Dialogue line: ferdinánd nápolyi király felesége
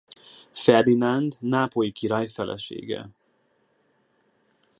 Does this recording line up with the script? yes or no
yes